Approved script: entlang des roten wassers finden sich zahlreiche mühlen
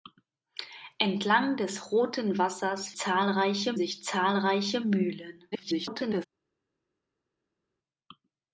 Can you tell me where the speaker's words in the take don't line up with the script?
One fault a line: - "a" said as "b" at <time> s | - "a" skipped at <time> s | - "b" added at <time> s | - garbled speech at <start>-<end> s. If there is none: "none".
- "finden" said as "zahlreiche" at 3.0 s
- garbled speech at 5.5-6.3 s